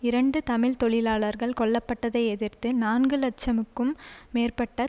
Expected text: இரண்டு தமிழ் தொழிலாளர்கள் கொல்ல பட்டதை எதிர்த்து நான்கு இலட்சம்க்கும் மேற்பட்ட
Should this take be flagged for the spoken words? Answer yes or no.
no